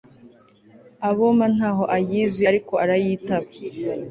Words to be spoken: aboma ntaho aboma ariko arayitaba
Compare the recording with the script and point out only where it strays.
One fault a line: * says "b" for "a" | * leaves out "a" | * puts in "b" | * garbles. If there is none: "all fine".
* says "ayizi" for "aboma"